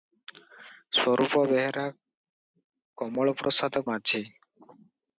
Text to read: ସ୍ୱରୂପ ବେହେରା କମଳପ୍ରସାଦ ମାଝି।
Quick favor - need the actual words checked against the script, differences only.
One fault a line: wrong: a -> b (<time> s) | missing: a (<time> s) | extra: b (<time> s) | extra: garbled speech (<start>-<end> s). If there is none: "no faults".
no faults